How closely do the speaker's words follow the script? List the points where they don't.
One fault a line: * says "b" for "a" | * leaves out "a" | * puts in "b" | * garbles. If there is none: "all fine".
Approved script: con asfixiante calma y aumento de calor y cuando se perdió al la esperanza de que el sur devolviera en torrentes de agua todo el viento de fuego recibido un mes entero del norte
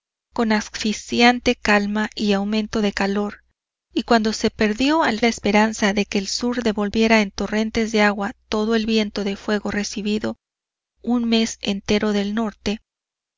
all fine